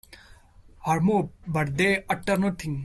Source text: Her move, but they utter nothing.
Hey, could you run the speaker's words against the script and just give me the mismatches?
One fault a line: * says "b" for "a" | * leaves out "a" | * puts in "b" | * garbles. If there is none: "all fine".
all fine